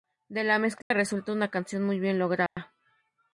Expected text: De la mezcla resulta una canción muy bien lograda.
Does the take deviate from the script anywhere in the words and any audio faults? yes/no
yes